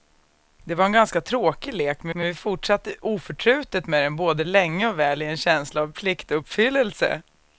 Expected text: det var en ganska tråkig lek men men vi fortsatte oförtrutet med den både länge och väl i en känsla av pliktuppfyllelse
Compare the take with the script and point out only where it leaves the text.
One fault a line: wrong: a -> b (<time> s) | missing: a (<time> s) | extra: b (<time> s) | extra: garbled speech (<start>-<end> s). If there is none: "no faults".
no faults